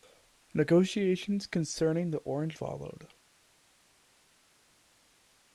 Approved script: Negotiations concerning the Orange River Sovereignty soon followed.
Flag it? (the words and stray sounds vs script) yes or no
yes